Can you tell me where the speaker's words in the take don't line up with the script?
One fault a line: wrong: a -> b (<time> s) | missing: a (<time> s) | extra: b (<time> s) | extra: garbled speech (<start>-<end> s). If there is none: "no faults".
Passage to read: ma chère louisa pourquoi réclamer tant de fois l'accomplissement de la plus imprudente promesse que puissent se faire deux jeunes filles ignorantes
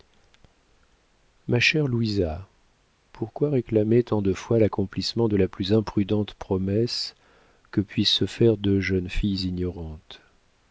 no faults